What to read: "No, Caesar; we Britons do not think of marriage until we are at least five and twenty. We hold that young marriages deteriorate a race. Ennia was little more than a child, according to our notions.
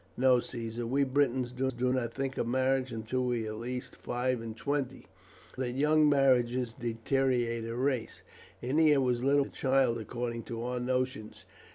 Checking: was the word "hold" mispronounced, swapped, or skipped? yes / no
yes